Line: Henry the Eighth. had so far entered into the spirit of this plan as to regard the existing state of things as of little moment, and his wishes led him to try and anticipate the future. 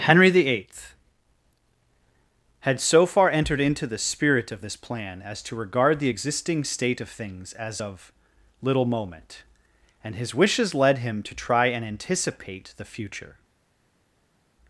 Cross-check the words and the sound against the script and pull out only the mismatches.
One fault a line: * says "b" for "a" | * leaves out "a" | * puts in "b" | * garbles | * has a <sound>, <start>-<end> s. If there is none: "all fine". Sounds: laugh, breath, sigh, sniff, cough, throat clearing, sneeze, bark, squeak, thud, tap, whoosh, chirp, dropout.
all fine